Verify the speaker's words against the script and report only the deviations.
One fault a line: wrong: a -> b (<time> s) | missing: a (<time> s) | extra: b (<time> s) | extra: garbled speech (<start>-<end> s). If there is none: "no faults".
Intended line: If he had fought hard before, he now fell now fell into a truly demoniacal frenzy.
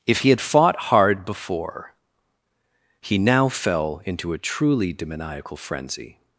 missing: now fell (4.0 s)